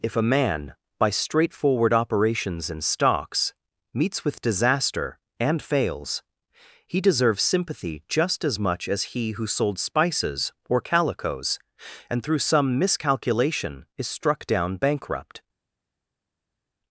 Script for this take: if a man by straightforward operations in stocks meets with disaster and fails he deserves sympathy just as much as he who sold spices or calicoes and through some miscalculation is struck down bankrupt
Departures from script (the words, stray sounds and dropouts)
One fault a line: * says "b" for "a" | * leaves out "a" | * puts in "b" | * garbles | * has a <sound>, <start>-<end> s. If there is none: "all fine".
all fine